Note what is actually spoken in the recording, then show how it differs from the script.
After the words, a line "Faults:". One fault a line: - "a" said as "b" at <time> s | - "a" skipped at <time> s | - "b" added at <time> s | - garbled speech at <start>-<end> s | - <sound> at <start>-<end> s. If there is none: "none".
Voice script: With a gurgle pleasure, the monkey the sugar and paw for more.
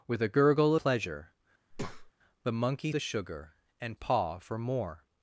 With a gurgle pleasure, the monkey the sugar and paw for more.
Faults:
- breath at 1.7-2.1 s